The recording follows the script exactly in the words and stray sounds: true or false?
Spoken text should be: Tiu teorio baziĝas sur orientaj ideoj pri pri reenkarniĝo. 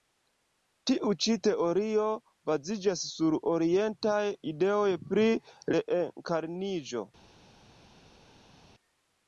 false